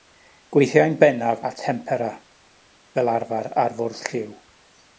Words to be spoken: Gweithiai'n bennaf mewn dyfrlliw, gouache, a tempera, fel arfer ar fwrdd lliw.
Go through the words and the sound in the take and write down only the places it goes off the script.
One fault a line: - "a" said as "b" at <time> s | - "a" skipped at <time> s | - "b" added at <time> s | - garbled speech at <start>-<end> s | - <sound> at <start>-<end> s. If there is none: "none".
- "mewn dyfrlliw gouache" skipped at 1.4 s